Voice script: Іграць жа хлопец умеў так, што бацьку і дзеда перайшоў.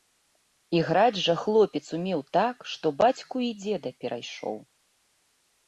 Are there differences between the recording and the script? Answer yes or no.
no